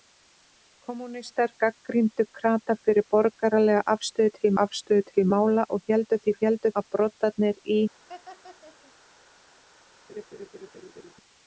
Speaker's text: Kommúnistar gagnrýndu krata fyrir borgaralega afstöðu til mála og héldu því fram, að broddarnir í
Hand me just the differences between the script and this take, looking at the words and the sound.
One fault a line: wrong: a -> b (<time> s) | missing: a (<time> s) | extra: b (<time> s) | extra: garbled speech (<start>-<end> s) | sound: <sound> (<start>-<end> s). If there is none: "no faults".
extra: afstöðu til (4.7 s)
wrong: fram -> héldu (6.5 s)
sound: laugh (8.1-8.9 s)
sound: laugh (10.1-11.1 s)